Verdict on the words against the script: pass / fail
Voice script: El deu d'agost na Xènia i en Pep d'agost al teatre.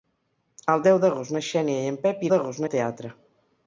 pass